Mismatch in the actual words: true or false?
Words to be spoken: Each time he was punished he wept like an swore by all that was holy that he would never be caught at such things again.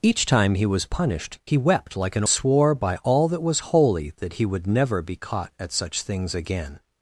false